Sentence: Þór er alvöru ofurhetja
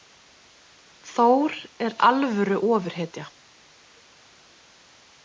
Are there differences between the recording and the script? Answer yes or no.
no